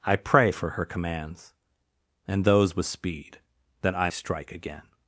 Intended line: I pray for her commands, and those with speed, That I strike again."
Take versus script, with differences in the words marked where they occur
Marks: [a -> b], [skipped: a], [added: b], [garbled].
I pray for her commands, and those with speed, That I strike again."